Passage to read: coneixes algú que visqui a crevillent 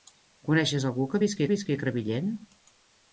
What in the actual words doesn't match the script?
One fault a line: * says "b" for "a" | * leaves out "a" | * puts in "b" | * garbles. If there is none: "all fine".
* puts in "visqui"